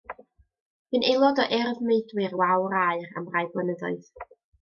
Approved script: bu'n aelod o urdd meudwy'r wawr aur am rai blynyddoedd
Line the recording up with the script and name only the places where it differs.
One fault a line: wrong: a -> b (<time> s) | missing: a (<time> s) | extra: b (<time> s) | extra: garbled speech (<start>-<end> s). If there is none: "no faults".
no faults